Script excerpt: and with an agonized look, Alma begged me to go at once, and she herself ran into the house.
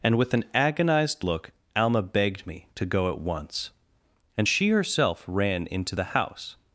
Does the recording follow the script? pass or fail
pass